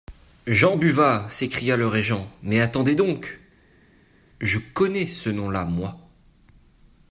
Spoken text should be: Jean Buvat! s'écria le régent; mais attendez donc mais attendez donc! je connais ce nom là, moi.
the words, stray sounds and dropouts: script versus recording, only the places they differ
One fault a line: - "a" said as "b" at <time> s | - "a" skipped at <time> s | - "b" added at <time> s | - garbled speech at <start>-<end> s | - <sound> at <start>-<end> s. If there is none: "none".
- "mais attendez donc" skipped at 3.4 s